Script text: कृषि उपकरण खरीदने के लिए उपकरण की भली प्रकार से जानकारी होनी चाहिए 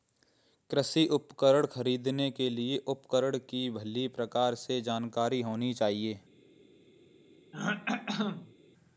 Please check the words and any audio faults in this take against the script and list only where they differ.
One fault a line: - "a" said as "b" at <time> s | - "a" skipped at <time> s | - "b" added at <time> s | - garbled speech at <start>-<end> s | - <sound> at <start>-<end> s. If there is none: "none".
- throat clearing at 7.5-8.5 s